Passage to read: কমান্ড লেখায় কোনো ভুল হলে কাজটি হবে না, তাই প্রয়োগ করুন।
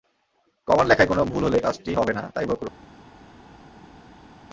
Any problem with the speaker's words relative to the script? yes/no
no